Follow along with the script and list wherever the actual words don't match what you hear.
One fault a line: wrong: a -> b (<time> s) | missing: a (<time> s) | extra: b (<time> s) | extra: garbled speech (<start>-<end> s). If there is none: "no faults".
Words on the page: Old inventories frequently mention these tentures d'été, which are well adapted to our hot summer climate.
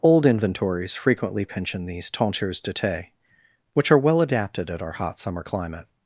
wrong: mention -> pension (1.4 s)
wrong: to -> at (4.7 s)